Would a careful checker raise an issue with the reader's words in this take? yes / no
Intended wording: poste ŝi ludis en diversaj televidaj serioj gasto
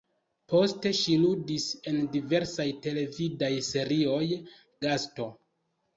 no